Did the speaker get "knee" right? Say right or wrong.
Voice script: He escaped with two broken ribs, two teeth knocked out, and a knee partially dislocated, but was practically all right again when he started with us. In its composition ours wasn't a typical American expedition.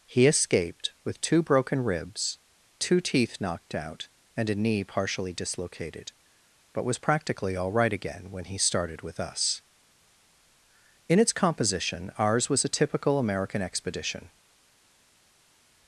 right